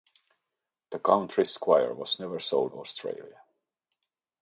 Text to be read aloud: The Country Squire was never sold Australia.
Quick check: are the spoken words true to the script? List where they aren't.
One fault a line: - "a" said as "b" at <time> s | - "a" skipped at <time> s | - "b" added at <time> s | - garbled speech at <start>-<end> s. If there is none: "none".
none